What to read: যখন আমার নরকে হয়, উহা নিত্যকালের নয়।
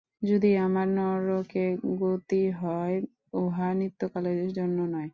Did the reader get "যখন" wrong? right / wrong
wrong